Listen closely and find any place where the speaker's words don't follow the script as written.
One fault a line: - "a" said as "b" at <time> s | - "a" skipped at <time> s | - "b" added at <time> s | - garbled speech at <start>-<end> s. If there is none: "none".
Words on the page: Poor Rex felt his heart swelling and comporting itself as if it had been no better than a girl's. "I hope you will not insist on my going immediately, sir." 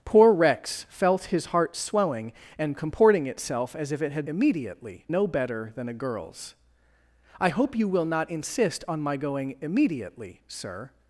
- "been" said as "immediately" at 4.3 s